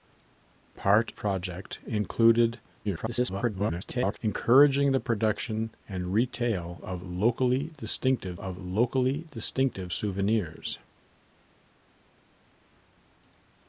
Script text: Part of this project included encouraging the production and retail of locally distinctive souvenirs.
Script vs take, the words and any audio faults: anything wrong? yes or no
yes